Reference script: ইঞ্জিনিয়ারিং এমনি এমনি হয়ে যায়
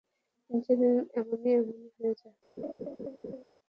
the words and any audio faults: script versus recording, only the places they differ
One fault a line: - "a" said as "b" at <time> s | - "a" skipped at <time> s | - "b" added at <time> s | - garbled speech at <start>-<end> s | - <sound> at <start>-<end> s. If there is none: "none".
- laugh at 2.6-3.4 s